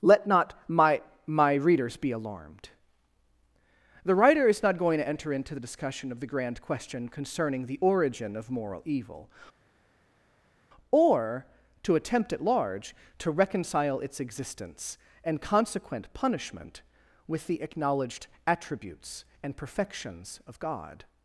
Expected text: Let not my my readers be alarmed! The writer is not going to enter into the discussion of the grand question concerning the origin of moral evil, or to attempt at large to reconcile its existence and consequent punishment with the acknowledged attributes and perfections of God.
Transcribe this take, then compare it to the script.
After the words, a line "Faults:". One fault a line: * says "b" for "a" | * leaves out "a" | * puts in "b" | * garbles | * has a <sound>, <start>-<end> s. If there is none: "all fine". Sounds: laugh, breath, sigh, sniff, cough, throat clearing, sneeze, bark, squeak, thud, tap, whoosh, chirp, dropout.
Let not my my readers be alarmed! The writer is not going to enter into the discussion of the grand question concerning the origin of moral evil, or to attempt at large to reconcile its existence and consequent punishment with the acknowledged attributes and perfections of God.
Faults:
all fine